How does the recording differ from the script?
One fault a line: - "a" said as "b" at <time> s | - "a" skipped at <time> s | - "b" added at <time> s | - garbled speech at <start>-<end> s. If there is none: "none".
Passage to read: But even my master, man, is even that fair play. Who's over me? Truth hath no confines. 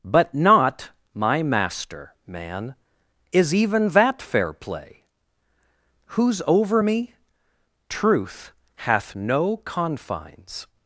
- "even" said as "not" at 0.3 s